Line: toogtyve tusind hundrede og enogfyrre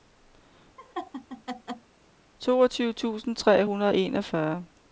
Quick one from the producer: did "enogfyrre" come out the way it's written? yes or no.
yes